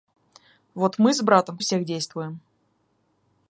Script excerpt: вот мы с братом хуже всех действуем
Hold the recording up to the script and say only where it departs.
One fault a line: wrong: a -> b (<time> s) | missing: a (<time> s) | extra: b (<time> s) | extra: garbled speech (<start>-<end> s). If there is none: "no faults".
missing: хуже (1.6 s)